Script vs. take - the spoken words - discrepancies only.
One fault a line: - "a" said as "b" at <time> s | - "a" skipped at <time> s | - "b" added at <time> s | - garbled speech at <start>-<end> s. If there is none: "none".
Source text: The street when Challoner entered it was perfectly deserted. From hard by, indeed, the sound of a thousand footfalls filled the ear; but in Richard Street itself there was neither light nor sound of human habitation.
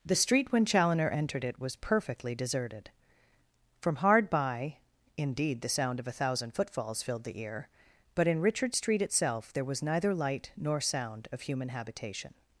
none